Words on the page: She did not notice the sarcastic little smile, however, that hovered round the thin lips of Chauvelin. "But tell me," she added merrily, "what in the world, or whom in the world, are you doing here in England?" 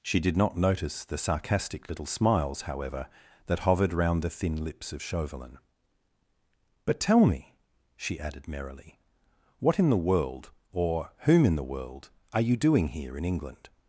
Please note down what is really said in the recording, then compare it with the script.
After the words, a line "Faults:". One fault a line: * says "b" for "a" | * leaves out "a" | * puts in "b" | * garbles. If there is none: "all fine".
She did not notice the sarcastic little smiles, however, that hovered round the thin lips of Chauvelin. "But tell me," she added merrily, "what in the world, or whom in the world, are you doing here in England?"
Faults:
* says "smiles" for "smile"